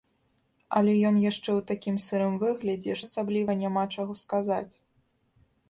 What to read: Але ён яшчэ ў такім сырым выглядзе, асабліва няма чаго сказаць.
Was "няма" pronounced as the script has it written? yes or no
yes